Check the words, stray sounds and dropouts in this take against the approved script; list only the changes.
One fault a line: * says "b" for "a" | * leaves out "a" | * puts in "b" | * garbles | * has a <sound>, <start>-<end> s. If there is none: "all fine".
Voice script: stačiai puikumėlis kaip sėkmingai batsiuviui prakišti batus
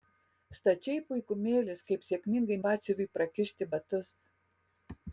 all fine